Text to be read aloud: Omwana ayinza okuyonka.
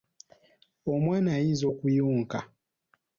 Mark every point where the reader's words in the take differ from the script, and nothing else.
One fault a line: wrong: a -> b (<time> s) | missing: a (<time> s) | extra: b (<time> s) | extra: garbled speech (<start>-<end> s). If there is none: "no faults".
no faults